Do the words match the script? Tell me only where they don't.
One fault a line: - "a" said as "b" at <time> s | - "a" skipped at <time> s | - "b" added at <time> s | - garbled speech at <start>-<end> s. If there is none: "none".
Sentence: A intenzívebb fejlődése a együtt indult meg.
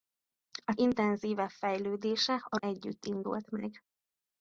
none